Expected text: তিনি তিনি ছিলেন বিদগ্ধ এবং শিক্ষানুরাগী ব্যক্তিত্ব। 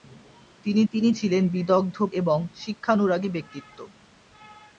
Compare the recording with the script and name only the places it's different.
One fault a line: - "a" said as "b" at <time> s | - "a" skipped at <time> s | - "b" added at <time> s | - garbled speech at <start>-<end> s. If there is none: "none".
none